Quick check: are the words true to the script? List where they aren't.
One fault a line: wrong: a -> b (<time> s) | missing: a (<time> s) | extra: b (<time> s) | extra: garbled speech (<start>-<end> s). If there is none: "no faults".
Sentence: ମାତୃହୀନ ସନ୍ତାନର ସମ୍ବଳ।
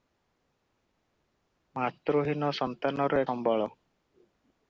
no faults